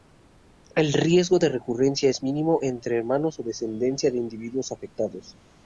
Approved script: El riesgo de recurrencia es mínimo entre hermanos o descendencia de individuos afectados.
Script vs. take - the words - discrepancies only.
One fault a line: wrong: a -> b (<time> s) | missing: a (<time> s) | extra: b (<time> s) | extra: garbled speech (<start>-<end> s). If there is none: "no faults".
no faults